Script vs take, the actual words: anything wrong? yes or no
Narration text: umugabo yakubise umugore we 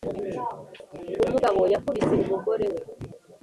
no